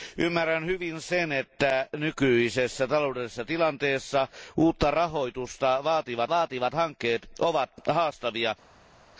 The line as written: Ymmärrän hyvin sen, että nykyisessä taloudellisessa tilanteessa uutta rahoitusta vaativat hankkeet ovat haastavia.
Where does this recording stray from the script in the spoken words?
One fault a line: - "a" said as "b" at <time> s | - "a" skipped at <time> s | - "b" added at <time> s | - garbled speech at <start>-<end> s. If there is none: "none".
- "vaativat" added at 6.3 s